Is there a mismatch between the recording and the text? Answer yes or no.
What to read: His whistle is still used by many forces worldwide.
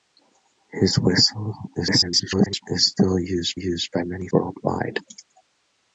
yes